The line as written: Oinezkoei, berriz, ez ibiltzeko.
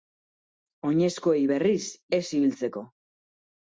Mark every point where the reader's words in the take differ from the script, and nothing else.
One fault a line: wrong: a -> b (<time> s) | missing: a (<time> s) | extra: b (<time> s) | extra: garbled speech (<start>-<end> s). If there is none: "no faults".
no faults